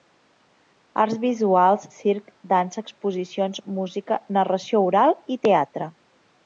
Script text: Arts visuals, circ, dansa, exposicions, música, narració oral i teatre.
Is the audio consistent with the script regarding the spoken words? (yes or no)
yes